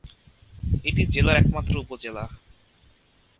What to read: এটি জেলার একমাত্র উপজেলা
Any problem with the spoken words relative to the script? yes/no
no